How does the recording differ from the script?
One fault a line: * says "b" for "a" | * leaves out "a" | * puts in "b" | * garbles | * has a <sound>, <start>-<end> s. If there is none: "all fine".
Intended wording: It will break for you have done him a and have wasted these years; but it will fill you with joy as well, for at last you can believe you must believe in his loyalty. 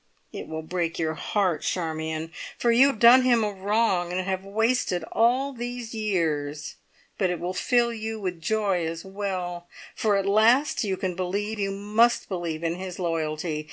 * puts in "your heart Charmion"
* puts in "wrong"
* puts in "all"